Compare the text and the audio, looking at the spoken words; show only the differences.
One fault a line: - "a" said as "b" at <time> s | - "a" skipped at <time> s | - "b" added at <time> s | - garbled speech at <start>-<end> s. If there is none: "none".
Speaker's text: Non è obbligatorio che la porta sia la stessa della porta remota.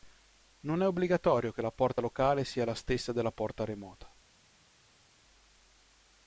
- "locale" added at 2.0 s